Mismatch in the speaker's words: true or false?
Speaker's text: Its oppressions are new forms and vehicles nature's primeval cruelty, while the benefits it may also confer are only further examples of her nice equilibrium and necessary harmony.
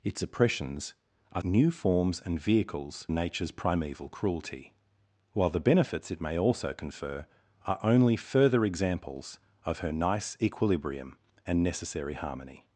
false